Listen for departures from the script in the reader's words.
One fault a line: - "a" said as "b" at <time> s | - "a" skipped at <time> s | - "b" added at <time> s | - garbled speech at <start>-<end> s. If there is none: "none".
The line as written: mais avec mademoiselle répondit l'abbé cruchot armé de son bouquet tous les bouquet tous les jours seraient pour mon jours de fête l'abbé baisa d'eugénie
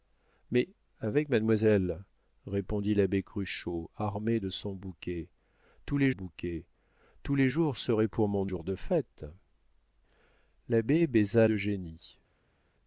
none